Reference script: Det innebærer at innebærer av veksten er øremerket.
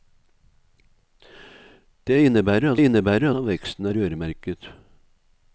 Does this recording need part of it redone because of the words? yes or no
no